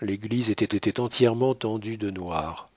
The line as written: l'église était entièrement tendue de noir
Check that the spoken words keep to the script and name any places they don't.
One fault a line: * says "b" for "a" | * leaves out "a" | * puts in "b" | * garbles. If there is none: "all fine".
* puts in "était"